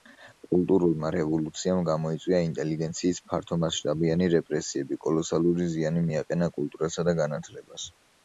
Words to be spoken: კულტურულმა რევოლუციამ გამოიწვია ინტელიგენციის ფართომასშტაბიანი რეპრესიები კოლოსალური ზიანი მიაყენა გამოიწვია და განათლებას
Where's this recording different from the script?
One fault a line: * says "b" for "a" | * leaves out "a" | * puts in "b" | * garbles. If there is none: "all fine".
* says "კულტურასა" for "გამოიწვია"